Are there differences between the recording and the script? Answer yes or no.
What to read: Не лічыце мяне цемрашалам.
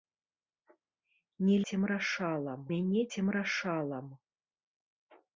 yes